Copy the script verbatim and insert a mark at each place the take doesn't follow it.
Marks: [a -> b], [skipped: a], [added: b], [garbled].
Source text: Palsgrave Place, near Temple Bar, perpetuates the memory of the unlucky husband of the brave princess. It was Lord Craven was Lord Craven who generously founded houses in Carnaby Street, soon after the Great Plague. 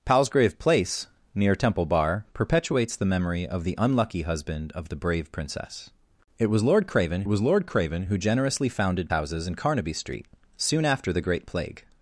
Palsgrave Place, near Temple Bar, perpetuates the memory of the unlucky husband of the brave princess. It was Lord Craven was Lord Craven who generously founded houses in Carnaby Street, soon after the Great Plague.